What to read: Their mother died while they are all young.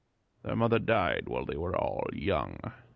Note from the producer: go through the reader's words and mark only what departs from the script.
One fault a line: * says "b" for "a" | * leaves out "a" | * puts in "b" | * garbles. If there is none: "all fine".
* says "were" for "are"